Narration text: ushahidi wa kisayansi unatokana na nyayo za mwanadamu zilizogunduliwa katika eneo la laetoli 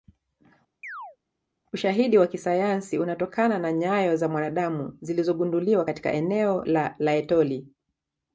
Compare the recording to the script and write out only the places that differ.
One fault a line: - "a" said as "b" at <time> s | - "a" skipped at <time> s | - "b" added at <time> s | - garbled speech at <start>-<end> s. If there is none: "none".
none